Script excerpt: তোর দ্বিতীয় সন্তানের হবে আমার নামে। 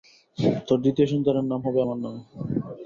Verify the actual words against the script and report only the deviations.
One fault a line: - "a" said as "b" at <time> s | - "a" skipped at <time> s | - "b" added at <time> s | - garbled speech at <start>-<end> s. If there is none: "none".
- "নাম" added at 1.5 s